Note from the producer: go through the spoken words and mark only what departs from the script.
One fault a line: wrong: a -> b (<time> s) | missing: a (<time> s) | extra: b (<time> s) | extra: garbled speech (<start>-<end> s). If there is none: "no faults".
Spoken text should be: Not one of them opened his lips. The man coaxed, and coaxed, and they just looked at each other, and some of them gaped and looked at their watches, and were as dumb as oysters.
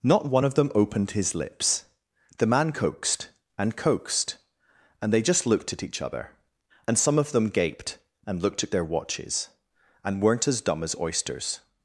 wrong: were -> weren't (10.2 s)